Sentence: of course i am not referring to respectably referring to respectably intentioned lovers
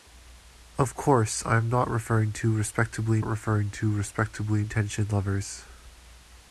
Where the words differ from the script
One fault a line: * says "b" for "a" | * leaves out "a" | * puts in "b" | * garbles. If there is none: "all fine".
all fine